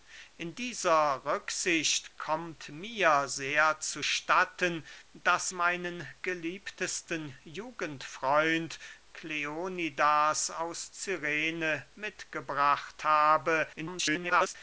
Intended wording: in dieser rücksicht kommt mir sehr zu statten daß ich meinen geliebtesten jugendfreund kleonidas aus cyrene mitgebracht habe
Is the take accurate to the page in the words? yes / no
no